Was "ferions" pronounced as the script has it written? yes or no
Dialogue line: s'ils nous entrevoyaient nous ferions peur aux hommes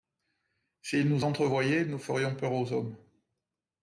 yes